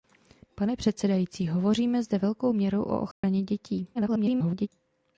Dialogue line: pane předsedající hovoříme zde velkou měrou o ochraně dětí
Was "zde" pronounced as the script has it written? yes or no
yes